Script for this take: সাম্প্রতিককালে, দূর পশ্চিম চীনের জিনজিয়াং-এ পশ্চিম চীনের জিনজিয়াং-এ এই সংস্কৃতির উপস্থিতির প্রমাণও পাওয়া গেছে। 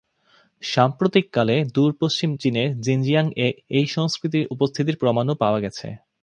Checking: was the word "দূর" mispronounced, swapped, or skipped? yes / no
no